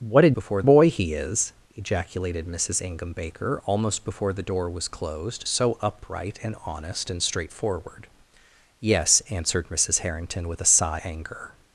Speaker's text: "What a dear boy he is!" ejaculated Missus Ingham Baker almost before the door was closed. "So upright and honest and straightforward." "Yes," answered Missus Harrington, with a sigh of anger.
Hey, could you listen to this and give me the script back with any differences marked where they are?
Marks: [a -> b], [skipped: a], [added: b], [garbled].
"What a [dear -> before] boy he is!" ejaculated Missus Ingham Baker almost before the door was closed. "So upright and honest and straightforward." "Yes," answered Missus Harrington, with a sigh [skipped: of] anger.